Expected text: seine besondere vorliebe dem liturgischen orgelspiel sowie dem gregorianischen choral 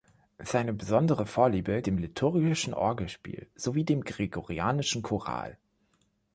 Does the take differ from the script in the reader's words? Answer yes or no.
no